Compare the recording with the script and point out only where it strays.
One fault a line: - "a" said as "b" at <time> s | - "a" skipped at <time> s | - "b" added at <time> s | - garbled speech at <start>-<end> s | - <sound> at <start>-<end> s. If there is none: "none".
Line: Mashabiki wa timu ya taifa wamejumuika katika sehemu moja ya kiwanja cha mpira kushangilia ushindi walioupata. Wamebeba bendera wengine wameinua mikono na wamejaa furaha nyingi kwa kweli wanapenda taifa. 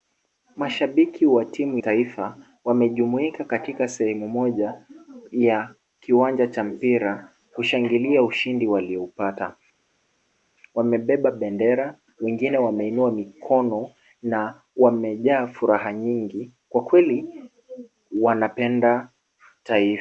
- "ya" skipped at 1.8 s